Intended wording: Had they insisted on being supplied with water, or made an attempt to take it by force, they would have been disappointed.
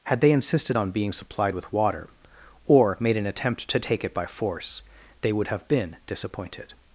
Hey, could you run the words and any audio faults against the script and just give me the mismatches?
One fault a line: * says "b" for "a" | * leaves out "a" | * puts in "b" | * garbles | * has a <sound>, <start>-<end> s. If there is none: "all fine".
all fine